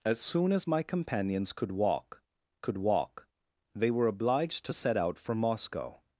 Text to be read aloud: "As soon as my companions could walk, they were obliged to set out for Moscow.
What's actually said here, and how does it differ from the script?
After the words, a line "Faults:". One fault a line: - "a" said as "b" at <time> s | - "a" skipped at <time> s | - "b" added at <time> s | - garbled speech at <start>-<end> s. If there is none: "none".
"As soon as my companions could walk could walk, they were obliged to set out for Moscow.
Faults:
- "could walk" added at 2.6 s